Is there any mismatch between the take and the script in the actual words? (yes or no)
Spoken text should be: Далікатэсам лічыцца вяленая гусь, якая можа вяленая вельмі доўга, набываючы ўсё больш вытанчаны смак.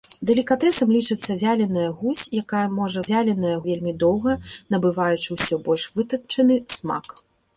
no